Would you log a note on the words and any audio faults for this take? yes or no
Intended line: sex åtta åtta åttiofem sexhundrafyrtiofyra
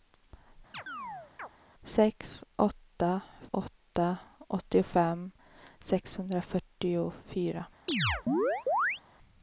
yes